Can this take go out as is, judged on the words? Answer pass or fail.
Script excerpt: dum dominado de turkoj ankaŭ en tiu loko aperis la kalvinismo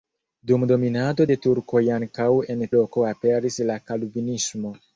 fail